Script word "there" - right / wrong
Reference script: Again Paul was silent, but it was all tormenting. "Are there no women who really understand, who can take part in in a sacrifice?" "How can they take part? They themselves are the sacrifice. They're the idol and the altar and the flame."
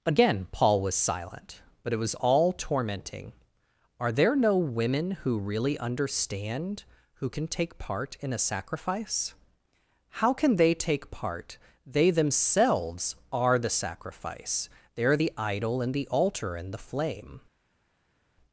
right